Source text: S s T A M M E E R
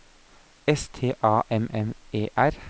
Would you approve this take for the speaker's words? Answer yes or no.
no